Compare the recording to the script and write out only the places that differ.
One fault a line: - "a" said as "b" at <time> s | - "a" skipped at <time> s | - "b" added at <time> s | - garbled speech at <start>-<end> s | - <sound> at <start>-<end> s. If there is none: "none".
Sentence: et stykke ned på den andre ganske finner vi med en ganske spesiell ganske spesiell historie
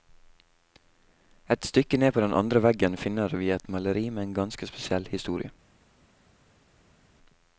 - "ganske" said as "veggen" at 2.6 s
- "et maleri" added at 3.5 s
- "ganske spesiell" skipped at 5.1 s